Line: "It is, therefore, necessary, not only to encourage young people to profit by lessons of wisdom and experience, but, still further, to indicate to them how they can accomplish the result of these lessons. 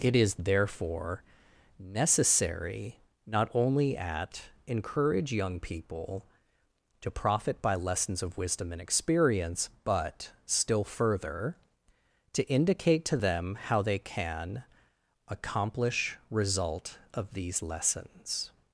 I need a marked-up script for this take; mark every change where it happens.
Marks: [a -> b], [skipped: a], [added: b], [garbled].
"It is, therefore, necessary, not only [to -> at] encourage young people to profit by lessons of wisdom and experience, but, still further, to indicate to them how they can accomplish [skipped: the] result of these lessons.